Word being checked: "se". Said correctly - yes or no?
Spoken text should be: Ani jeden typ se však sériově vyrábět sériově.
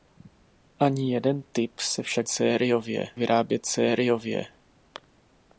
yes